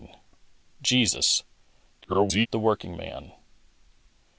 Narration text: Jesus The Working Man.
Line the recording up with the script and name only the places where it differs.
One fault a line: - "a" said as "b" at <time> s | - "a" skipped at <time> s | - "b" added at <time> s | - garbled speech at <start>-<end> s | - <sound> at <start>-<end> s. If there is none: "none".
- garbled speech at 2.0-2.5 s